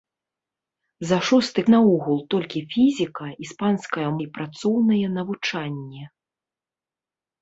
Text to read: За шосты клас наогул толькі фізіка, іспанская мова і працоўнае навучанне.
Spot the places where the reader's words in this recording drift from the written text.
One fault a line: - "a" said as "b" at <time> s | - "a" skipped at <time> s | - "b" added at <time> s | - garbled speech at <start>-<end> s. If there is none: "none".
- "клас" skipped at 1.6 s
- "мова" skipped at 4.0 s